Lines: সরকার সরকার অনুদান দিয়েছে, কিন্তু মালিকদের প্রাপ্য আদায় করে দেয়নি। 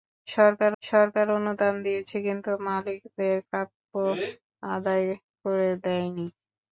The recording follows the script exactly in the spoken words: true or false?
true